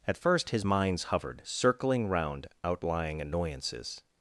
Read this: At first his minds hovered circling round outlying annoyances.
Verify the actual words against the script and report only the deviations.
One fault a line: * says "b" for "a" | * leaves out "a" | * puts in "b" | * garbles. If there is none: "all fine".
all fine